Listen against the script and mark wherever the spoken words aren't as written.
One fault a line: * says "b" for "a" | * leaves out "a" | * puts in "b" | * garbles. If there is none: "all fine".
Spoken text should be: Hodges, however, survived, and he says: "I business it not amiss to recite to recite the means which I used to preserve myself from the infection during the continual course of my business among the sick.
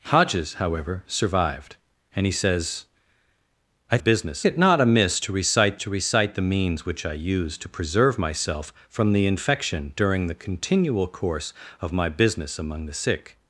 all fine